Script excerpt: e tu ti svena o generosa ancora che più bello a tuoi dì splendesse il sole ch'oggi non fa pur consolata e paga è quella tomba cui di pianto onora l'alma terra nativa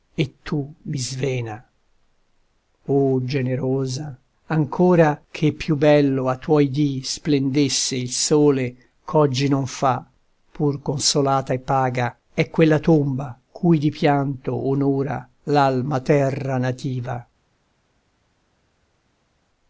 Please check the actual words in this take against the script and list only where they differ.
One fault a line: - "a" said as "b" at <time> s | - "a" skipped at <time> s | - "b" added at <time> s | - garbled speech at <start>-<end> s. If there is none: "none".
- "ti" said as "mi" at 0.8 s